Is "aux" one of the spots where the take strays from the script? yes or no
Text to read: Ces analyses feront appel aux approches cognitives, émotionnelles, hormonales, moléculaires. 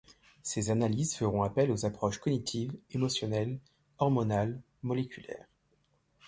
no